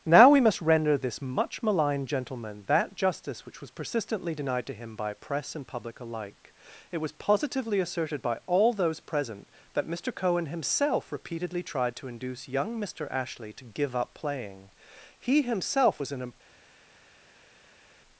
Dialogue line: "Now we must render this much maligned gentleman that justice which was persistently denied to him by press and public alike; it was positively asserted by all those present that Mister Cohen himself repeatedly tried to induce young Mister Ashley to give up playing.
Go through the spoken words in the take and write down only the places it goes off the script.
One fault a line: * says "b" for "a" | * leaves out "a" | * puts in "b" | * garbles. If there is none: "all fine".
* puts in "He himself was in a"